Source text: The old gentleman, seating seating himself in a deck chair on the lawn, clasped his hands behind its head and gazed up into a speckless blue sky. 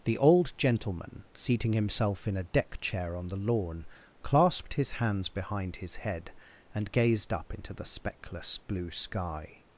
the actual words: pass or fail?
fail